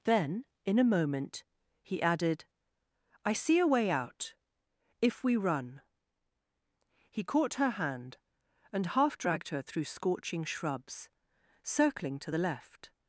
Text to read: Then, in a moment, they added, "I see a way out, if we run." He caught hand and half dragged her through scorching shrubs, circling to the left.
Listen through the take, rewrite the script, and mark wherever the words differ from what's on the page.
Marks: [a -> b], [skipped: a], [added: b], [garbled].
Then, in a moment, [they -> he] added, "I see a way out, if we run." He caught [added: her] hand and half dragged her through scorching shrubs, circling to the left.